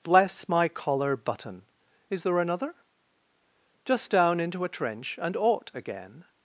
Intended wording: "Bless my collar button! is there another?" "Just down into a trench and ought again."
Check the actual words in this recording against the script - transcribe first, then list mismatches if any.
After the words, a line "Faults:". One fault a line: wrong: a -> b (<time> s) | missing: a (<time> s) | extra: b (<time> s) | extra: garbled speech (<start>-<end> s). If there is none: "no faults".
"Bless my collar button! is there another?" "Just down into a trench and ought again."
Faults:
no faults